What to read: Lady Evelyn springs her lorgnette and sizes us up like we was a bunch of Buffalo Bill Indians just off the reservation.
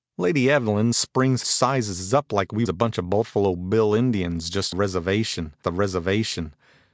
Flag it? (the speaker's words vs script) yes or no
yes